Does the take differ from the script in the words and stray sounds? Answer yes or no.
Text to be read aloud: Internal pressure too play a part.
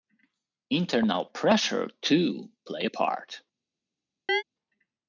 yes